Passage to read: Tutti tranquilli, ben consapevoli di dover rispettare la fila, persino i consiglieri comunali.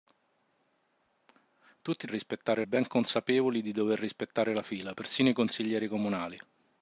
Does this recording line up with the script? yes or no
no